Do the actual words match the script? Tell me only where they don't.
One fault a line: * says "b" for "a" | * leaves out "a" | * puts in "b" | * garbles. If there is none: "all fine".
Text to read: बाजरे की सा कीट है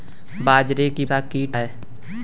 all fine